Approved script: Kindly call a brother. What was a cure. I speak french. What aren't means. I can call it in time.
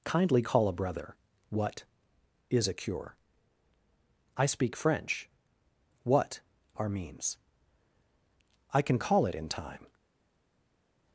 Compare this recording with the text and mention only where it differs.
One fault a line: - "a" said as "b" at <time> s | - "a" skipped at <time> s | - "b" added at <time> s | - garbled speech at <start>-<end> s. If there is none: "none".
- "was" said as "is" at 2.5 s
- "aren't" said as "are" at 6.8 s